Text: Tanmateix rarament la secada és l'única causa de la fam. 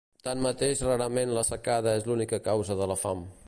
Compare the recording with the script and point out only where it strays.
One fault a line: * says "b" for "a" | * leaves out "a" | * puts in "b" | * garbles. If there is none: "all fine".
all fine